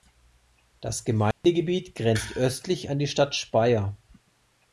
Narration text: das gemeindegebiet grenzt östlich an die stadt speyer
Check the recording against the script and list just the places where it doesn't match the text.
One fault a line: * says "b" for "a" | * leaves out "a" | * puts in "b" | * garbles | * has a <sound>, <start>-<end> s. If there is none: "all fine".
* has a dropout, 1.3-1.4 s